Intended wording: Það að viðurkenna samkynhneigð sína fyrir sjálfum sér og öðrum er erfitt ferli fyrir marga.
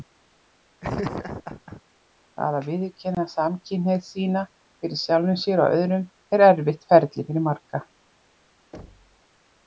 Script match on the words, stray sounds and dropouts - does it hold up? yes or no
no